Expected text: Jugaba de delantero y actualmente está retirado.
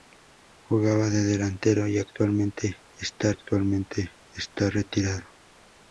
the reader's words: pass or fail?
fail